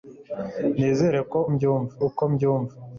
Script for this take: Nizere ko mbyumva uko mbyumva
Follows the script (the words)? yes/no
yes